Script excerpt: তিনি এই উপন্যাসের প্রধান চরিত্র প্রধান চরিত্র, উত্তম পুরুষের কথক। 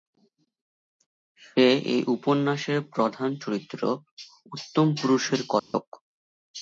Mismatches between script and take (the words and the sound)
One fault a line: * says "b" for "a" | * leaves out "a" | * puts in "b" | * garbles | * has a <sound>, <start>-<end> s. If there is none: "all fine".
* says "সে" for "তিনি"
* leaves out "প্রধান চরিত্র"
* has a dropout, 5.6-5.7 s